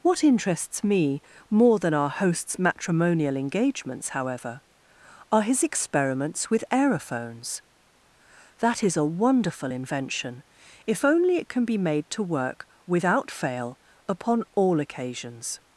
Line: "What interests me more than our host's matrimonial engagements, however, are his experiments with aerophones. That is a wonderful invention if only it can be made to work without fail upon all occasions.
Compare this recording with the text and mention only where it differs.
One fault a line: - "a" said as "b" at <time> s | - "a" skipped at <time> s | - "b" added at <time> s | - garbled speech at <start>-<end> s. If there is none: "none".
none